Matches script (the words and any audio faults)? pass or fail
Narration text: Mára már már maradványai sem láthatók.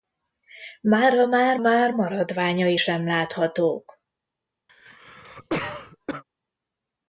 fail